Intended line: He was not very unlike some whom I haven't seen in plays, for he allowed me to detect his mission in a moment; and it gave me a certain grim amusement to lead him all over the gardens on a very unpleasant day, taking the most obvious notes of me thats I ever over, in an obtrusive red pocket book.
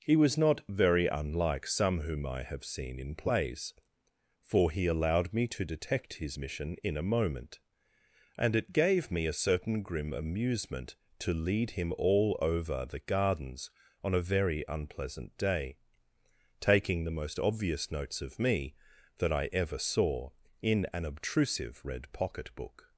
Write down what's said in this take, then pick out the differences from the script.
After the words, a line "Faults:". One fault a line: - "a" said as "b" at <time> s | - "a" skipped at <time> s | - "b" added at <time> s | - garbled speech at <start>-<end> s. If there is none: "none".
He was not very unlike some whom I have seen in plays, for he allowed me to detect his mission in a moment; and it gave me a certain grim amusement to lead him all over the gardens on a very unpleasant day, taking the most obvious notes of me that I ever saw, in an obtrusive red pocket book.
Faults:
- "haven't" said as "have" at 2.4 s
- "thats" said as "that" at 19.2 s
- "over" said as "saw" at 19.8 s